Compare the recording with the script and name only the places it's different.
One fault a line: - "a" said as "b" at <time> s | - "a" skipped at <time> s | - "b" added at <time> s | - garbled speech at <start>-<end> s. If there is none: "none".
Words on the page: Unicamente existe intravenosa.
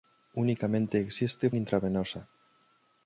none